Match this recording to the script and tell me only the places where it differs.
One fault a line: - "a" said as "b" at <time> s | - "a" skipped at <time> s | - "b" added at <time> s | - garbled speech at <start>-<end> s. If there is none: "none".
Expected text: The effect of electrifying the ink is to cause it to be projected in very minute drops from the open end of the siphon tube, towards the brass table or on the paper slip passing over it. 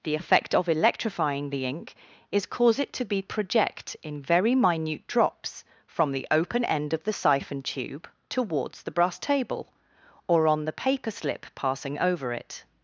- "to" skipped at 2.5 s
- "projected" said as "project" at 3.2 s